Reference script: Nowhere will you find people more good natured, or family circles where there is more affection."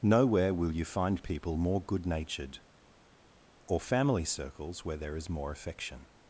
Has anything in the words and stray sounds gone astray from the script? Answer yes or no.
no